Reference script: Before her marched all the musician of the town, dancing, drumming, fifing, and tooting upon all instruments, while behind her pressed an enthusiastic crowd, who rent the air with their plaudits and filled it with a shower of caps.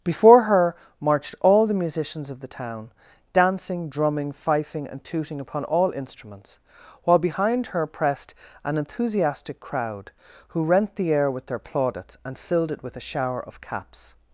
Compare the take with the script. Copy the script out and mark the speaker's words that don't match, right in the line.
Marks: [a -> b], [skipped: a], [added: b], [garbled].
Before her marched all the [musician -> musicians] of the town, dancing, drumming, fifing, and tooting upon all instruments, while behind her pressed an enthusiastic crowd, who rent the air with their plaudits and filled it with a shower of caps.